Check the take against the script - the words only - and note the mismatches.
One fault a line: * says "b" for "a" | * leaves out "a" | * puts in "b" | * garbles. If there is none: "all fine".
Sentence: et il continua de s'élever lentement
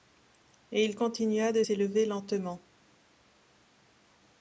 all fine